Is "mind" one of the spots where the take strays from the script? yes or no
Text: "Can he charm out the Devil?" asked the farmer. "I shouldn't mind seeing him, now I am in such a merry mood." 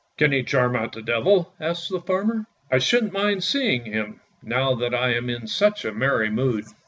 no